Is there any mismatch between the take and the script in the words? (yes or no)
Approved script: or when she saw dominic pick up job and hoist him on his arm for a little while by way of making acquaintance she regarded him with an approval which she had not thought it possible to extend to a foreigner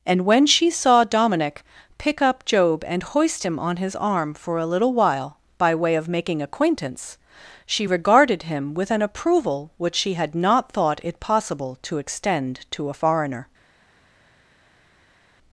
yes